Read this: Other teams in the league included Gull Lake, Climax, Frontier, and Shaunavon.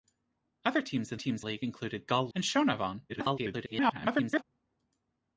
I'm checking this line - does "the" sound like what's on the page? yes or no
no